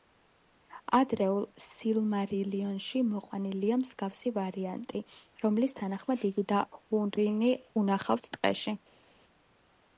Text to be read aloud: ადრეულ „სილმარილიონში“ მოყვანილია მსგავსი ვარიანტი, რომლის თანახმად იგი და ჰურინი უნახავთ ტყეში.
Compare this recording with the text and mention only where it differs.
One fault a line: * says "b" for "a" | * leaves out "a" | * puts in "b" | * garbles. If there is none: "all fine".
all fine